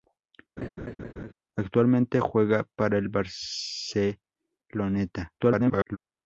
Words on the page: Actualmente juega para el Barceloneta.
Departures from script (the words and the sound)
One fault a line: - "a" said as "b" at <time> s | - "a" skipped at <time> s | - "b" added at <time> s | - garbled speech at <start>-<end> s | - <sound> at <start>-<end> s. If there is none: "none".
- laugh at 0.6-1.3 s
- garbled speech at 5.4-6.0 s